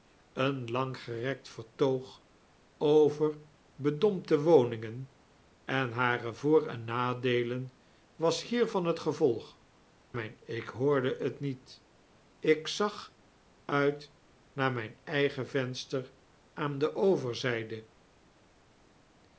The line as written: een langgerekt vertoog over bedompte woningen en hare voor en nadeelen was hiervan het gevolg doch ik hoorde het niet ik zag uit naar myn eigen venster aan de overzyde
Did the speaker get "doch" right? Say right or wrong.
wrong